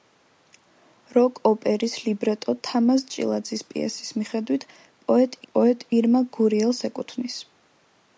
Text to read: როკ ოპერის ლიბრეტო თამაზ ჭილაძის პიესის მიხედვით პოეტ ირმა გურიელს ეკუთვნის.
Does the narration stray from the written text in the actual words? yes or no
yes